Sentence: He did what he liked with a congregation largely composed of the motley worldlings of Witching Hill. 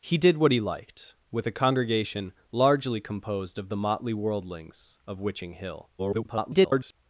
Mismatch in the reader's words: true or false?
true